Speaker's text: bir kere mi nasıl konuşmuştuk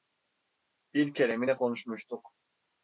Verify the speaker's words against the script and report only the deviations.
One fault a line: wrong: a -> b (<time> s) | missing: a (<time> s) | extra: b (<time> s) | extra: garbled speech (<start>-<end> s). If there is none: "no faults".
wrong: nasıl -> ne (1.5 s)